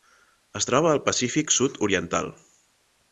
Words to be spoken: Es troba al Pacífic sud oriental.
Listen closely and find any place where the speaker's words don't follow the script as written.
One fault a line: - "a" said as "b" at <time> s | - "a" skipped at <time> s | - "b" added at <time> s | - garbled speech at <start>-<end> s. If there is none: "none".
none